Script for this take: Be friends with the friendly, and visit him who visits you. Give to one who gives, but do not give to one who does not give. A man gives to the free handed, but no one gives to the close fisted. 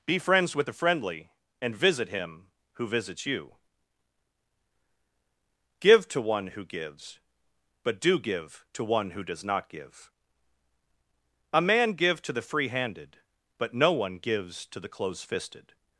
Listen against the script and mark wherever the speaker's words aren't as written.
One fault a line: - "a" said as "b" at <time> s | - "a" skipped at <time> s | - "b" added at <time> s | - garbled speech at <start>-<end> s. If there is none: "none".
- "not" skipped at 8.2 s
- "gives" said as "give" at 11.9 s